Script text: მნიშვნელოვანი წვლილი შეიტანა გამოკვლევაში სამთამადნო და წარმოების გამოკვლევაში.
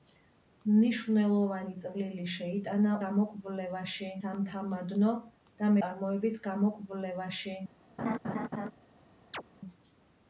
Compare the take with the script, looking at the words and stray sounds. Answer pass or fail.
fail